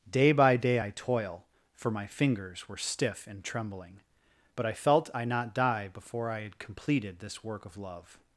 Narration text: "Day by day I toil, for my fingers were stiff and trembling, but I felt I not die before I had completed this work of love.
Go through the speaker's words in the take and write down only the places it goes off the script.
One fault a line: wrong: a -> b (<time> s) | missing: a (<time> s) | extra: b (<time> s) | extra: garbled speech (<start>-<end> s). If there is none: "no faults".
no faults